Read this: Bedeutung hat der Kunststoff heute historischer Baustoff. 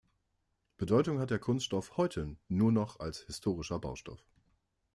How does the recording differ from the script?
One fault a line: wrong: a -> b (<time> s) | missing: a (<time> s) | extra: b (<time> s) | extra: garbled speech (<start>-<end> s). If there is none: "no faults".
extra: nur noch als (2.5 s)